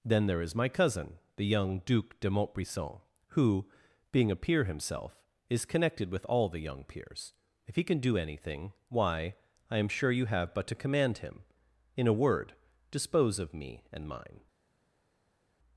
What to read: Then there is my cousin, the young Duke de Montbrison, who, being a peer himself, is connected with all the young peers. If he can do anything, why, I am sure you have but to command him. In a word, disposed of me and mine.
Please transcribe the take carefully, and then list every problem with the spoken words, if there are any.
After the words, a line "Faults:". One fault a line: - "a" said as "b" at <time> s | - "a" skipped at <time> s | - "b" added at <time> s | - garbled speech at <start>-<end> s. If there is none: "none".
Then there is my cousin, the young Duke de Montbrison, who, being a peer himself, is connected with all the young peers. If he can do anything, why, I am sure you have but to command him. In a word, dispose of me and mine.
Faults:
- "disposed" said as "dispose" at 12.9 s